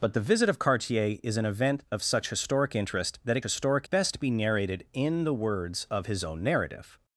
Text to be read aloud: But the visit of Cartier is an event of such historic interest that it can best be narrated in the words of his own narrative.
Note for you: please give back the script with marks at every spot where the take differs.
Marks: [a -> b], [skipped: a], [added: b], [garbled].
But the visit of Cartier is an event of such historic interest that it [can -> historic] best be narrated in the words of his own narrative.